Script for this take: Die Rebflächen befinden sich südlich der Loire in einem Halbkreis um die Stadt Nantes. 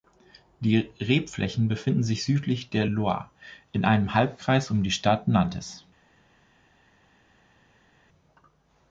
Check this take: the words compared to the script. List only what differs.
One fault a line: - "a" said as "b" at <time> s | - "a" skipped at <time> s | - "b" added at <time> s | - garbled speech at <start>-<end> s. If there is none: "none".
none